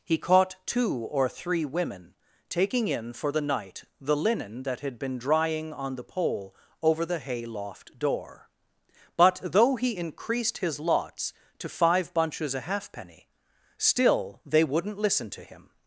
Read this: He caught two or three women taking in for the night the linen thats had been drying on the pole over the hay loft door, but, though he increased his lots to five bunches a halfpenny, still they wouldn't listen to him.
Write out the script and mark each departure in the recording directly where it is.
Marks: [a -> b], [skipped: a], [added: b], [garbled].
He caught two or three women taking in for the night the linen [thats -> that] had been drying on the pole over the hay loft door, but, though he increased his lots to five bunches a halfpenny, still they wouldn't listen to him.